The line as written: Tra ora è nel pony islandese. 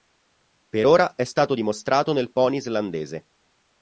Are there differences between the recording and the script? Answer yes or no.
yes